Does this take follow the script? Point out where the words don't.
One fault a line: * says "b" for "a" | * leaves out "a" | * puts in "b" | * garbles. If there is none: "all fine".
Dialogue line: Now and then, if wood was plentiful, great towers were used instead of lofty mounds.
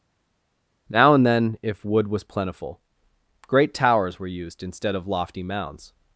all fine